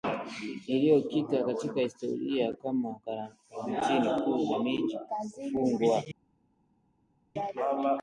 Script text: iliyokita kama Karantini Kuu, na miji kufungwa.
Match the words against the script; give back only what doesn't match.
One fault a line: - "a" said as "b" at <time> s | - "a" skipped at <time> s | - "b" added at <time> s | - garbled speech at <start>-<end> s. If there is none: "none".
- "katika historia" added at 1.4 s